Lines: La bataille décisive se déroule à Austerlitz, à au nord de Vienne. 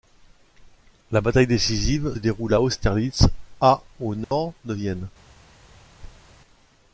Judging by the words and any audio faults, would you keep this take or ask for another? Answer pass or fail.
fail